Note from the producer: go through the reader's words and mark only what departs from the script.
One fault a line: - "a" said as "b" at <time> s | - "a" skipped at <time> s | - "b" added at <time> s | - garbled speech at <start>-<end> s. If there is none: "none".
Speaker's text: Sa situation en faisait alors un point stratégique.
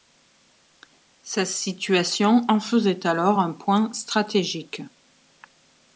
none